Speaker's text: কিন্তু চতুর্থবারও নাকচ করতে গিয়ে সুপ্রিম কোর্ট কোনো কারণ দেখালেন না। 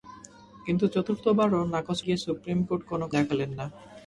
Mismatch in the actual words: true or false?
true